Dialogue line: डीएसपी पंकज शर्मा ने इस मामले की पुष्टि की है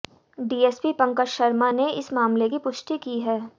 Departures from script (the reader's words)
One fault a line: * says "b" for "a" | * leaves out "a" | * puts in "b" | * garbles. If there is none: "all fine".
all fine